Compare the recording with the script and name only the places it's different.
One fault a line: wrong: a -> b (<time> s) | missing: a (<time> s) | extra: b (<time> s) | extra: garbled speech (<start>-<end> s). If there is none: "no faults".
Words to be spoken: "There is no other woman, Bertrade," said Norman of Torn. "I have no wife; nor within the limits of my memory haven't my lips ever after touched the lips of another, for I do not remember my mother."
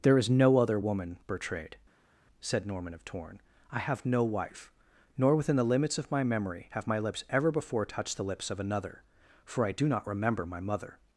wrong: haven't -> have (6.7 s)
wrong: after -> before (7.5 s)